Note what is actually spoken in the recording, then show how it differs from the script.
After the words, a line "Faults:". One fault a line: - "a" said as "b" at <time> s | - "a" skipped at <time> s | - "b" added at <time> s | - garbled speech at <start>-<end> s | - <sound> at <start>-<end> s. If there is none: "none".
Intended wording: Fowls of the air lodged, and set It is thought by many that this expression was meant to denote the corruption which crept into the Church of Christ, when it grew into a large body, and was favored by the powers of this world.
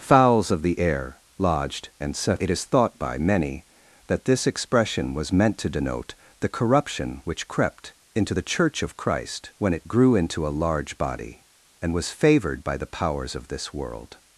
Fowls of the air lodged, and set It is thought by many that this expression was meant to denote the corruption which crept into the Church of Christ, when it grew into a large body, and was favored by the powers of this world.
Faults:
none